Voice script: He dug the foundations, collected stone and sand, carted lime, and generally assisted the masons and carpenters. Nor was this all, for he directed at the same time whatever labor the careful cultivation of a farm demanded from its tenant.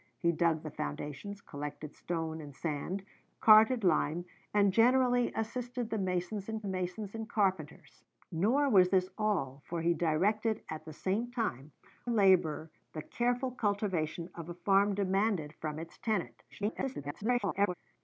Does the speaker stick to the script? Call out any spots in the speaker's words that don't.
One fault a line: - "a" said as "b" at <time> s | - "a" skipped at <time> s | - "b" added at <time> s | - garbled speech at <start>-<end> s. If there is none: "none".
- "masons and" added at 6.7 s
- "whatever" skipped at 11.7 s
- garbled speech at 16.5-17.7 s